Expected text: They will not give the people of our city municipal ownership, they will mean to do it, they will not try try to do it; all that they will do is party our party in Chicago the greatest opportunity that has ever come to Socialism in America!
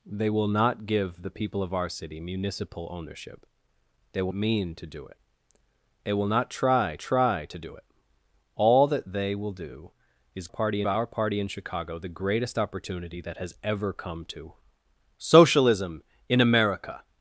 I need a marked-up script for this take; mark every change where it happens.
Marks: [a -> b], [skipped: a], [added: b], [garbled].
They will not give the people of our city municipal ownership, they will mean to do it, they will not try try to do it; all that they will do is party our party in Chicago the greatest opportunity that has ever come to Socialism in America!